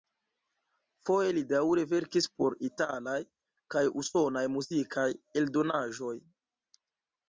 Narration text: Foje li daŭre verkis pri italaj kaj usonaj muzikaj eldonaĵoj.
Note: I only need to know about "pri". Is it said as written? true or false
false